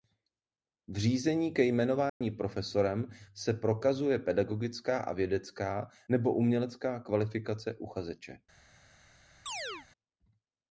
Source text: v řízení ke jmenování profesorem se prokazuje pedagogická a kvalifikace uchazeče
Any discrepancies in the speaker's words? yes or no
yes